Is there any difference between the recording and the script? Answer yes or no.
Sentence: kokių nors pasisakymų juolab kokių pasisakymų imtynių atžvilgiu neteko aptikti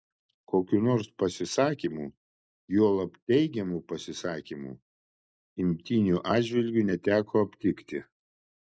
yes